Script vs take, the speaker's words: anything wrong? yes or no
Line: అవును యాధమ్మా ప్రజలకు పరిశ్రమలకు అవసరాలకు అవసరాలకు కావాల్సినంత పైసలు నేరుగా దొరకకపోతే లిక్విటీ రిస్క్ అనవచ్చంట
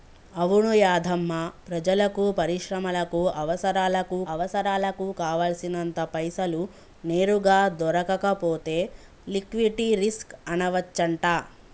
no